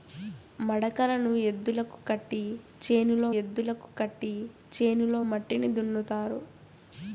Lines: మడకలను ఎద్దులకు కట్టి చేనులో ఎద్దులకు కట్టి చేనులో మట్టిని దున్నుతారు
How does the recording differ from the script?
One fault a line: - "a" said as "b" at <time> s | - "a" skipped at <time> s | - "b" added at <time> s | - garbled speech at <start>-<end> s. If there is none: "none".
none